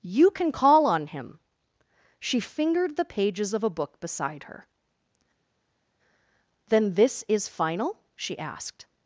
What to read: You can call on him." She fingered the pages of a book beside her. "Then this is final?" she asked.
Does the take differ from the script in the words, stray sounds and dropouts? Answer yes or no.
no